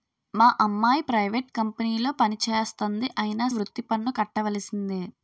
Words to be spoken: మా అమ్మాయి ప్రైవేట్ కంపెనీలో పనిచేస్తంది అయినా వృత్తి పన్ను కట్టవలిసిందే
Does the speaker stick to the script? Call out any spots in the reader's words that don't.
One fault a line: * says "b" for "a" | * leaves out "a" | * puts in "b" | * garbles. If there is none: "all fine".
all fine